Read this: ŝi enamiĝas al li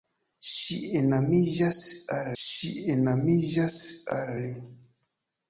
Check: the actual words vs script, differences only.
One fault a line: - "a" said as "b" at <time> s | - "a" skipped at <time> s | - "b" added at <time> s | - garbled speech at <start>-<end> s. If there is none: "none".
- "ŝi enamiĝas al" added at 2.4 s